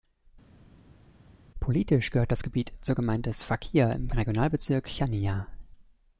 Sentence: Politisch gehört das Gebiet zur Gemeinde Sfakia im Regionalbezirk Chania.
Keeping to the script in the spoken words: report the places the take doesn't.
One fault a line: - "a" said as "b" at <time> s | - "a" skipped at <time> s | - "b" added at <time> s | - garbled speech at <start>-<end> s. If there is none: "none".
none